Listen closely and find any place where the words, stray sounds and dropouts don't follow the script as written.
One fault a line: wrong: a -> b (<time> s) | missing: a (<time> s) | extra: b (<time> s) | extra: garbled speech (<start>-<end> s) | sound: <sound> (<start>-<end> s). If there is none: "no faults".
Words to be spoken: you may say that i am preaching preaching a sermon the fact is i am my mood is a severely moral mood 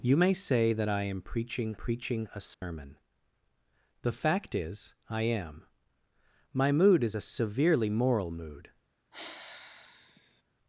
sound: dropout (2.5-2.6 s)
sound: sigh (9.1-10.4 s)